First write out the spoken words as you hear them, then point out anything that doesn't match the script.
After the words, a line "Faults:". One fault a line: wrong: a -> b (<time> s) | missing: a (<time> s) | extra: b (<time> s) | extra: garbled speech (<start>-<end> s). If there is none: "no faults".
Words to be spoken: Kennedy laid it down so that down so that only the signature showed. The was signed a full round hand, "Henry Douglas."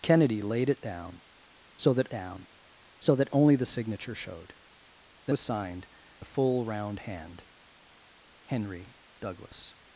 Kennedy laid it down so that down so that only the signature showed. The was signed a full round hand, "Henry Douglas."
Faults:
no faults